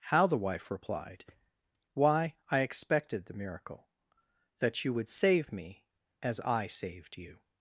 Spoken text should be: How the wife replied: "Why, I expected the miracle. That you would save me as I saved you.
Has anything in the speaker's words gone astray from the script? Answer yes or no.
no